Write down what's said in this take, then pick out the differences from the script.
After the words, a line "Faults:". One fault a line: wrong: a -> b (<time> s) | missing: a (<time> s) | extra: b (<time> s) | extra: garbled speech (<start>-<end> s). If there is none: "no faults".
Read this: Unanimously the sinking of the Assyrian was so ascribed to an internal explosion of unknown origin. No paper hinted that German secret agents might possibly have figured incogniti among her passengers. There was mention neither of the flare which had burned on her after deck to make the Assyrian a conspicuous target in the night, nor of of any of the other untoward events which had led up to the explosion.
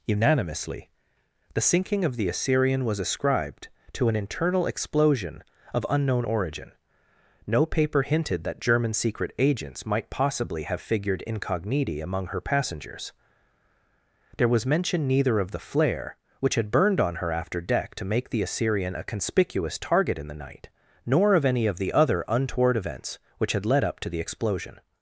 Unanimously the sinking of the Assyrian was ascribed to an internal explosion of unknown origin. No paper hinted that German secret agents might possibly have figured incogniti among her passengers. There was mention neither of the flare which had burned on her after deck to make the Assyrian a conspicuous target in the night, nor of any of the other untoward events which had led up to the explosion.
Faults:
missing: so (3.0 s)
missing: of (21.5 s)